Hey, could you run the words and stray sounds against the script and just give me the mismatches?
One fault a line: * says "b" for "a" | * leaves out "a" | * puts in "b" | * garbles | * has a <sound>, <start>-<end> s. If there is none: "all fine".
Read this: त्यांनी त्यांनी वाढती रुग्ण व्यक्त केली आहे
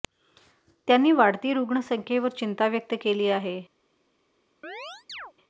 * leaves out "त्यांनी"
* puts in "संख्येवर चिंता"
* has a chirp, 4.6-5.3 s